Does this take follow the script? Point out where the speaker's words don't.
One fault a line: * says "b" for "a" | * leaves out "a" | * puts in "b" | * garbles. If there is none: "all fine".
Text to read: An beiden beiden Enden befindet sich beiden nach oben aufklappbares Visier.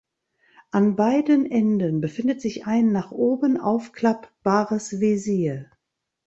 * leaves out "beiden"
* says "ein" for "beiden"